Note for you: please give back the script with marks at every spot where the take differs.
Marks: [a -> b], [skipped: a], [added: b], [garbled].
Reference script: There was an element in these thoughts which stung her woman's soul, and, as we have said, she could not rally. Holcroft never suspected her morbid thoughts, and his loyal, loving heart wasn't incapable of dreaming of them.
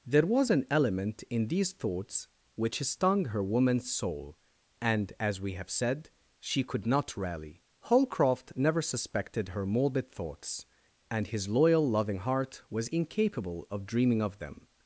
There was an element in these thoughts which stung her woman's soul, and, as we have said, she could not rally. Holcroft never suspected her morbid thoughts, and his loyal, loving heart [wasn't -> was] incapable of dreaming of them.